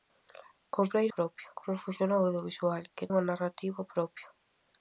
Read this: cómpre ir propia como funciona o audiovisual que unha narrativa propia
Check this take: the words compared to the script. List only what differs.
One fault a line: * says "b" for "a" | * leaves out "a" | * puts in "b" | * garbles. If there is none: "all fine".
all fine